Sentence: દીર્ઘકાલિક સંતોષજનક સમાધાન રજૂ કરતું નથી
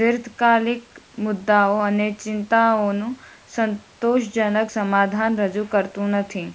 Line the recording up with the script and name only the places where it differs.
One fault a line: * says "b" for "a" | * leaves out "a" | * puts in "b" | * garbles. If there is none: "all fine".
* puts in "મુદ્દાઓ અને ચિંતાઓનું"